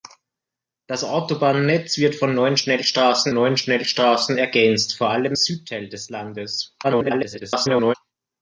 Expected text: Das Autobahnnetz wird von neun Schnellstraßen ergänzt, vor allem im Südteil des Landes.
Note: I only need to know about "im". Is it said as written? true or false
false